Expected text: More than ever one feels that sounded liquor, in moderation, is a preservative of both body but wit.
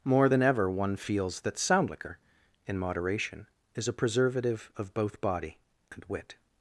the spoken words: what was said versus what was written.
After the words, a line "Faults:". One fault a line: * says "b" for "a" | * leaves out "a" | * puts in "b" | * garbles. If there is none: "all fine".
More than ever one feels that sound liquor, in moderation, is a preservative of both body and wit.
Faults:
* says "sound" for "sounded"
* says "and" for "but"